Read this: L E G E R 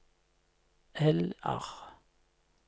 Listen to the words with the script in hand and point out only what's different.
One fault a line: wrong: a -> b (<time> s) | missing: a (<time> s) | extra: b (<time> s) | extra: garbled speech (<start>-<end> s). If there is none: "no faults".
missing: E G E (1.4 s)